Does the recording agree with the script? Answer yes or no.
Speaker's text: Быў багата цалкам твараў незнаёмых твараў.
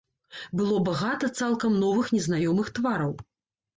no